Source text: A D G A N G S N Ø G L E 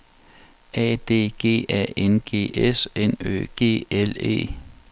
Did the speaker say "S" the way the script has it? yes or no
yes